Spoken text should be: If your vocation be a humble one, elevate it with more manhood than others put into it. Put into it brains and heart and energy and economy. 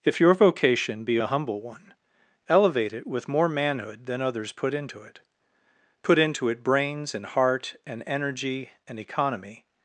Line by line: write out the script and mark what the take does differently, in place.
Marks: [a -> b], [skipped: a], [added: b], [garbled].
If your vocation be a humble one, elevate it with more manhood than others put into it. Put into it brains and heart and energy and economy.